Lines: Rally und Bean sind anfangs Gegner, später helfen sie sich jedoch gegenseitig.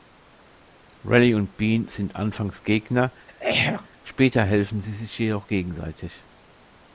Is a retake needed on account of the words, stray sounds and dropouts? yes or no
yes